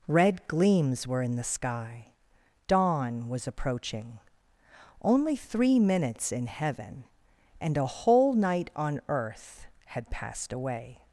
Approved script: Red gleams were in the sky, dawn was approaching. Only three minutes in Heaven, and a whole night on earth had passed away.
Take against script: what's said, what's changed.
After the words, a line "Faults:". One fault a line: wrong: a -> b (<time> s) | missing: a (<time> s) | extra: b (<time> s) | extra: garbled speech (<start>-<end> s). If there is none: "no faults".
Red gleams were in the sky, dawn was approaching. Only three minutes in Heaven, and a whole night on earth had passed away.
Faults:
no faults